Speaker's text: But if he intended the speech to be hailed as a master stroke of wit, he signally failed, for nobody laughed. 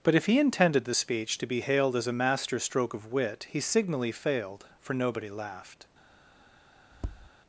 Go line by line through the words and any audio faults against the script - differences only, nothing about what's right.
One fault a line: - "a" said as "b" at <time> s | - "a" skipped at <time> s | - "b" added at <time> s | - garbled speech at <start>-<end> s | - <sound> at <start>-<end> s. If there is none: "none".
- tap at 6.9-7.3 s